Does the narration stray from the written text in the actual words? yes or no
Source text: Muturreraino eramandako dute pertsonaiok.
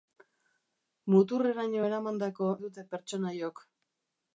no